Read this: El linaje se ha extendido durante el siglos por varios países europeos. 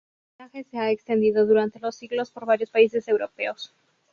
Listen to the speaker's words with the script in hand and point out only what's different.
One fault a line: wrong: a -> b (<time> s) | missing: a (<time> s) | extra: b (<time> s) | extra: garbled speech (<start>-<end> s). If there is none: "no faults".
wrong: el -> los (1.8 s)